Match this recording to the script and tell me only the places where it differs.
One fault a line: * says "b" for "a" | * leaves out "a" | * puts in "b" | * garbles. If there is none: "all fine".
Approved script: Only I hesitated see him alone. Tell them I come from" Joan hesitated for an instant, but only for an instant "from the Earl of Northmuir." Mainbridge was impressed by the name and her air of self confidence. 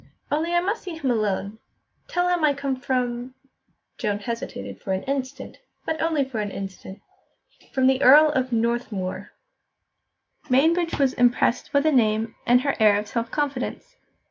* says "must" for "hesitated"
* says "him" for "them"